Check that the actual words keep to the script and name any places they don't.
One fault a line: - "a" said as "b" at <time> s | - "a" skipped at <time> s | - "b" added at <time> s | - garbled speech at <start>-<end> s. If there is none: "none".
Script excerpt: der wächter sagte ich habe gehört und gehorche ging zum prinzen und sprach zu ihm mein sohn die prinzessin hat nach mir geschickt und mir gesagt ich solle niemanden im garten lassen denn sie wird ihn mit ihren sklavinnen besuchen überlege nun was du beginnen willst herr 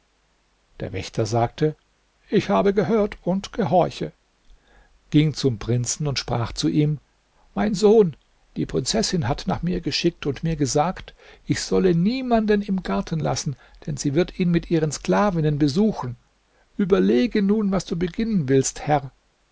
none